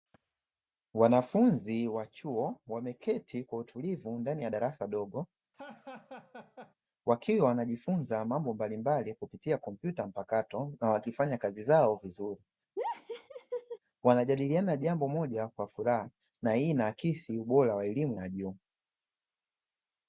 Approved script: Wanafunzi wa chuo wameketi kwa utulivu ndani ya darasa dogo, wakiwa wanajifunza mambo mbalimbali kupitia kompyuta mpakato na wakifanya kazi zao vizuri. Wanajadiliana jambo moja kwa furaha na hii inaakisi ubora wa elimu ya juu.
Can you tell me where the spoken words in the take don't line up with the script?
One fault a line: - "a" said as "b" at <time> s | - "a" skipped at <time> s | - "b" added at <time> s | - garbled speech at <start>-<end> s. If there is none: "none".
none